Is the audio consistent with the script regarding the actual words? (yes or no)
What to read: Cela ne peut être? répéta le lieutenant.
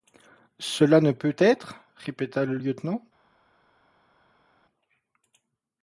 yes